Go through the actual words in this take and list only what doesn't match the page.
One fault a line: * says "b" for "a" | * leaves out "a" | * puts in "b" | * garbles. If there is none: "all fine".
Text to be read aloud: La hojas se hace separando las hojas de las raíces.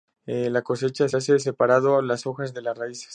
* says "cosecha" for "hojas"